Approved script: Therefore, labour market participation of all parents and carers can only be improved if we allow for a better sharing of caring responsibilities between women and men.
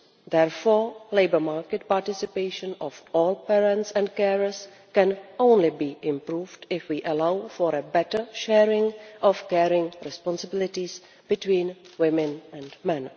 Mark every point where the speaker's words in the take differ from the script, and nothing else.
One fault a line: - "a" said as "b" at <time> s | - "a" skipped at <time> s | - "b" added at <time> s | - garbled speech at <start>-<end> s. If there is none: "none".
none